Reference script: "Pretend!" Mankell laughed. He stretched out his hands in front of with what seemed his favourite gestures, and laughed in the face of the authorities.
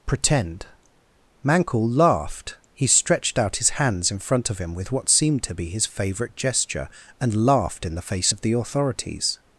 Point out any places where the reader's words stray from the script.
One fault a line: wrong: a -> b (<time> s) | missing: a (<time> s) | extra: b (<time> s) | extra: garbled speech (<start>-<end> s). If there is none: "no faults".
extra: him (4.6 s)
extra: to be (5.4 s)
wrong: gestures -> gesture (6.3 s)